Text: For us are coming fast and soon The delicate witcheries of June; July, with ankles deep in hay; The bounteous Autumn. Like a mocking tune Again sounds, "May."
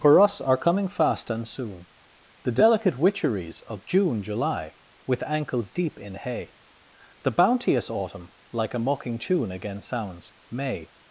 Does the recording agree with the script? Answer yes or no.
yes